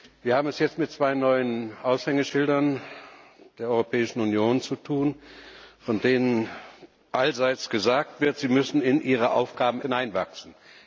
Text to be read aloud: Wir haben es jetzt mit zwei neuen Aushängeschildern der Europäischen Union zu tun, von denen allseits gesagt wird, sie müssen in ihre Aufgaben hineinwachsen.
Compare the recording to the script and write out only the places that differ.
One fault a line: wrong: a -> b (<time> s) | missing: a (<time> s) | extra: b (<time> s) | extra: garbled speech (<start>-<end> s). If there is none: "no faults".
no faults